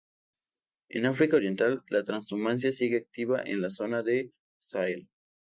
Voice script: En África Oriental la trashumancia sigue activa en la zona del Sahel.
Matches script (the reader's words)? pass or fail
pass